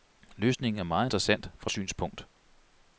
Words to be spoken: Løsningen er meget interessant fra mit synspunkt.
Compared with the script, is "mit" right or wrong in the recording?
wrong